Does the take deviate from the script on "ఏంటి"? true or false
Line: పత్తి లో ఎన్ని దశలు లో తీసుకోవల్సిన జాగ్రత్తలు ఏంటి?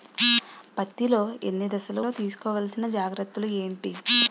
false